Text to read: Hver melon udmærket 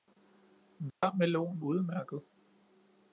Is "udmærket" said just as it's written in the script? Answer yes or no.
yes